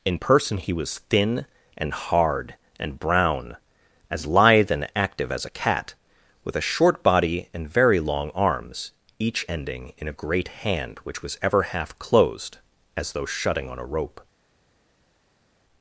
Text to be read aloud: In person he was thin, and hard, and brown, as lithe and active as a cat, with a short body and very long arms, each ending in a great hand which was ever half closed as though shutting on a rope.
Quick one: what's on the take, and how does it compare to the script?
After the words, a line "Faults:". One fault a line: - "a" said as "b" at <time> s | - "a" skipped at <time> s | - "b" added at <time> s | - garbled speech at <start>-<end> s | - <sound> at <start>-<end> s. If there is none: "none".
In person he was thin, and hard, and brown, as lithe and active as a cat, with a short body and very long arms, each ending in a great hand which was ever half closed as though shutting on a rope.
Faults:
none